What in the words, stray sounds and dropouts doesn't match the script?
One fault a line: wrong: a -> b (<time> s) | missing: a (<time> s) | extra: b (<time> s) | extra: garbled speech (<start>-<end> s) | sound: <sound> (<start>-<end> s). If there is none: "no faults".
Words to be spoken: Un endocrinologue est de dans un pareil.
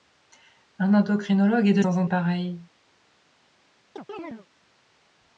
sound: chirp (4.0-4.5 s)